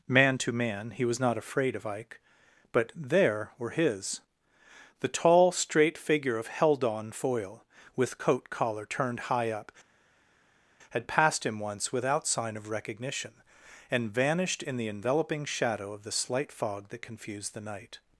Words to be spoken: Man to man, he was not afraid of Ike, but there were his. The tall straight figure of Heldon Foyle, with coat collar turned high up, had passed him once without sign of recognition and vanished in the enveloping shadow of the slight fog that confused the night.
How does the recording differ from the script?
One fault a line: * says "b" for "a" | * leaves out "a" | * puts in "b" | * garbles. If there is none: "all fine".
all fine